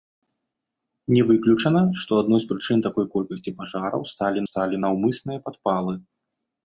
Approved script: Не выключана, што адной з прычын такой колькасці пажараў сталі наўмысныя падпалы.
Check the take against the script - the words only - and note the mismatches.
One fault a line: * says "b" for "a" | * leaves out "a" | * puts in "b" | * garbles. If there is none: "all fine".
* puts in "сталі"